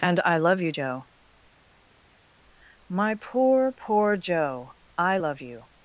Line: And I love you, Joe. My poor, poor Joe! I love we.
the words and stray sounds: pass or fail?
fail